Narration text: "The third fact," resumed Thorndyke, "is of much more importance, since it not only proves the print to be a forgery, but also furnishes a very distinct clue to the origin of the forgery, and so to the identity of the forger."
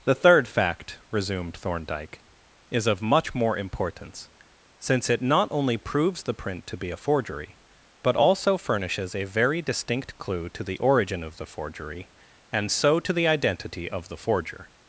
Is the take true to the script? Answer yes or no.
yes